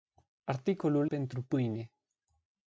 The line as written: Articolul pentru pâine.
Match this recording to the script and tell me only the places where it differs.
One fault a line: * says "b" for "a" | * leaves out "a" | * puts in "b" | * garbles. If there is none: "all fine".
all fine